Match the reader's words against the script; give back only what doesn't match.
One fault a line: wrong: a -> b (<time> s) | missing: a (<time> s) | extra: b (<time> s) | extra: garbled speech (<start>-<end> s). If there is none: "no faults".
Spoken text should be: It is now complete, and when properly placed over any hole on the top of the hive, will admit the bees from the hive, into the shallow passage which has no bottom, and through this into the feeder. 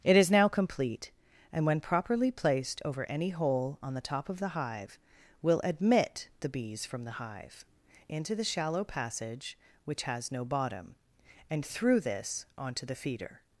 wrong: into -> onto (12.6 s)